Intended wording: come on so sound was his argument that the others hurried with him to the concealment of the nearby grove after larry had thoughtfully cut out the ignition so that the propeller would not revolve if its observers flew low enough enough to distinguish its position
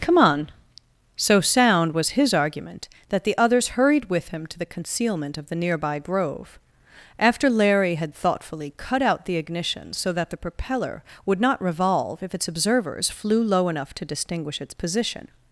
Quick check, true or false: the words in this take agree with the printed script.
false